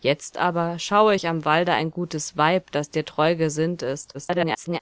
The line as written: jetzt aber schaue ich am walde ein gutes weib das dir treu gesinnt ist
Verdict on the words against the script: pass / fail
fail